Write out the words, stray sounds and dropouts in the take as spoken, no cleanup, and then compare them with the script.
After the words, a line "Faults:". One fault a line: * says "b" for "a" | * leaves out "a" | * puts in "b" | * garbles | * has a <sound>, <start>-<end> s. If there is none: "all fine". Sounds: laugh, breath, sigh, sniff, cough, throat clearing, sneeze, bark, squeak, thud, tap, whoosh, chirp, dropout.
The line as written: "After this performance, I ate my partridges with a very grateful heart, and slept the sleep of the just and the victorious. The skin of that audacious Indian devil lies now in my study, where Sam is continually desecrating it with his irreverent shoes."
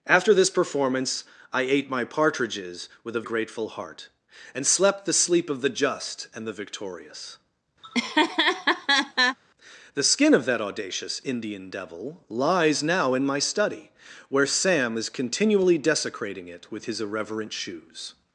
"After this performance, I ate my partridges with a grateful heart, and slept the sleep of the just and the victorious. The skin of that audacious Indian devil lies now in my study, where Sam is continually desecrating it with his irreverent shoes."
Faults:
* leaves out "very"
* has a laugh, 7.8-9.4 s